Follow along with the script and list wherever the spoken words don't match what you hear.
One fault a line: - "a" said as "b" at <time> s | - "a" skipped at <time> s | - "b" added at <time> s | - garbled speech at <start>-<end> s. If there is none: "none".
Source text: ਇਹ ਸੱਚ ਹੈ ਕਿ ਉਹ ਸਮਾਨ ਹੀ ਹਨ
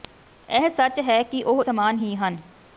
none